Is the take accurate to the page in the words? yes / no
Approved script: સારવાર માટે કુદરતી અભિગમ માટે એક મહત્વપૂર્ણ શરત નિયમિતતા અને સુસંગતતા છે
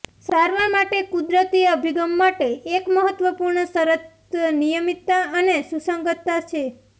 yes